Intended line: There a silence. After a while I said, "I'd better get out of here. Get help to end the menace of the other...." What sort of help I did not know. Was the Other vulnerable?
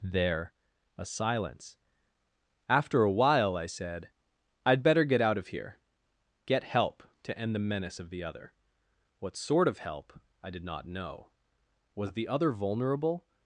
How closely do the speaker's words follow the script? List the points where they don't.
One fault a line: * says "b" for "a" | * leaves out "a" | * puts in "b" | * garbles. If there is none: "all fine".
all fine